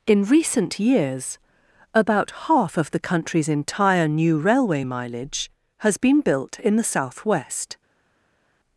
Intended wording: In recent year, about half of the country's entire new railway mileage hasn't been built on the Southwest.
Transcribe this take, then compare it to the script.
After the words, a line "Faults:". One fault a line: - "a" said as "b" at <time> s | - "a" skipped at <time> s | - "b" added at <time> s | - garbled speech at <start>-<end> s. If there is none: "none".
In recent years, about half of the country's entire new railway mileage has been built in the Southwest.
Faults:
- "year" said as "years" at 0.8 s
- "hasn't" said as "has" at 5.8 s
- "on" said as "in" at 6.6 s